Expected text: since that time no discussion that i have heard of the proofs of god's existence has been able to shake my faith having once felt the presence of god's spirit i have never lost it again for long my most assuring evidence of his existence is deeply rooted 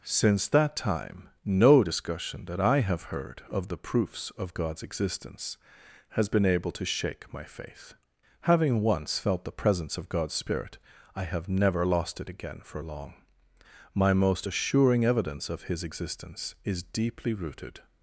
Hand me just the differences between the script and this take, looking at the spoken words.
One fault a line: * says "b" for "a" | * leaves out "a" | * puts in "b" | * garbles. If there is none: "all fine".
all fine